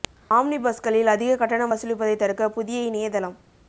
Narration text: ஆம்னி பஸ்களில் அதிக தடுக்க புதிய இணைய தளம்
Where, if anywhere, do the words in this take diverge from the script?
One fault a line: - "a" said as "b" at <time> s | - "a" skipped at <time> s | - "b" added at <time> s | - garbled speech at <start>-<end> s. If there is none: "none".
- "கட்டணம் வசூலிப்பதை" added at 1.4 s